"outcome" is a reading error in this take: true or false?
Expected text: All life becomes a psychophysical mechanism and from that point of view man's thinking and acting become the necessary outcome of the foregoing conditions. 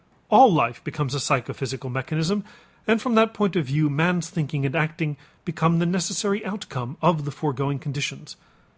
false